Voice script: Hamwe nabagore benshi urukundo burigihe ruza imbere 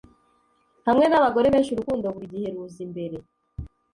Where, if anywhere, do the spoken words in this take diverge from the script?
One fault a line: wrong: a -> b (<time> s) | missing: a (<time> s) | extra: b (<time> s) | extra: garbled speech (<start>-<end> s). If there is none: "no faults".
no faults